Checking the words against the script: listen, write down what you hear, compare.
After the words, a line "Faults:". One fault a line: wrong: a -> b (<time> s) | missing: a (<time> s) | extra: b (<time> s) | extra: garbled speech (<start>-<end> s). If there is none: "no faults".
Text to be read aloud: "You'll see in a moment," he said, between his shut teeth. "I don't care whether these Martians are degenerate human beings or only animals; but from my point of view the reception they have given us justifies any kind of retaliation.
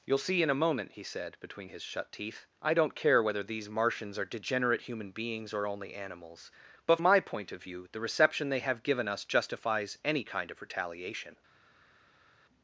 "You'll see in a moment," he said, between his shut teeth. "I don't care whether these Martians are degenerate human beings or only animals; but my point of view the reception they have given us justifies any kind of retaliation.
Faults:
missing: from (7.0 s)